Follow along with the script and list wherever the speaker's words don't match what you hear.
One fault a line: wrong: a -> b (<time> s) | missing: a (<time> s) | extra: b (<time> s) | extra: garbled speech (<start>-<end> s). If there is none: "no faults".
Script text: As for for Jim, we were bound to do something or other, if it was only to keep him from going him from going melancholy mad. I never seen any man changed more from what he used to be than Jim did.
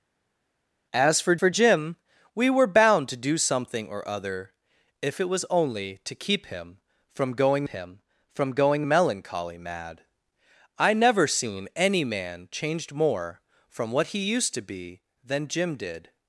no faults